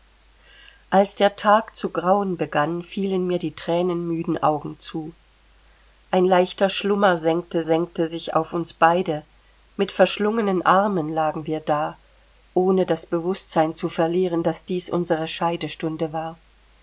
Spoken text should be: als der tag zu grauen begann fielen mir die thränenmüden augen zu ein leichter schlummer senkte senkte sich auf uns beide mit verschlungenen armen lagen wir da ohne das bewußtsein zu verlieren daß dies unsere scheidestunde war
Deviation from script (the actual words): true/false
false